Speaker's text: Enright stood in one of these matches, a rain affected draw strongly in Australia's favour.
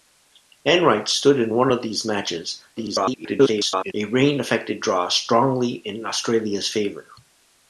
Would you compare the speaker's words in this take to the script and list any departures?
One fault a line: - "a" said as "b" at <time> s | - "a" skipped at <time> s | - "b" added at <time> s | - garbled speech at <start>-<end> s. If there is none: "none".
- garbled speech at 2.8-3.9 s